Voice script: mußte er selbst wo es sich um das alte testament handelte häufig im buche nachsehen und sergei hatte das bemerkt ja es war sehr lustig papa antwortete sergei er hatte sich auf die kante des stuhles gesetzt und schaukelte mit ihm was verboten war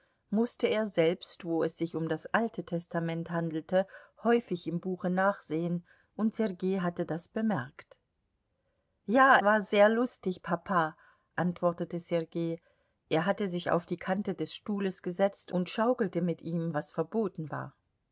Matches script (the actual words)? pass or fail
fail